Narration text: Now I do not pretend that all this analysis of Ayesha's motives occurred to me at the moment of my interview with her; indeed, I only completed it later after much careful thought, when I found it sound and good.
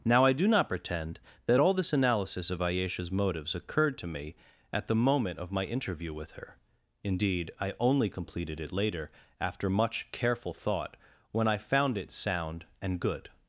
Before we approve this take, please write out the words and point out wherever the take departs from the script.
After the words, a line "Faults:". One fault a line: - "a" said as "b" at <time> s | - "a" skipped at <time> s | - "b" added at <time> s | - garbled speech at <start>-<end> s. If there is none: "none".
Now I do not pretend that all this analysis of Ayesha's motives occurred to me at the moment of my interview with her; indeed, I only completed it later after much careful thought, when I found it sound and good.
Faults:
none